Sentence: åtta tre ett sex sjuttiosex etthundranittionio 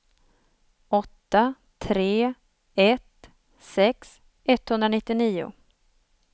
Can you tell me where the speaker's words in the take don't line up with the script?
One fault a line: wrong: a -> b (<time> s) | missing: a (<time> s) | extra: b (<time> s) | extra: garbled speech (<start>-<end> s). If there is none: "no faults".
missing: sjuttiosex (4.2 s)